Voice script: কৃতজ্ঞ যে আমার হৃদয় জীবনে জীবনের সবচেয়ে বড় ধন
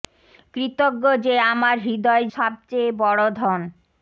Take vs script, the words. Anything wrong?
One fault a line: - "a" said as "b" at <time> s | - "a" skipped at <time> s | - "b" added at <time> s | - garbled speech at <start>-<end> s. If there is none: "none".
- "জীবনে জীবনের" skipped at 2.2 s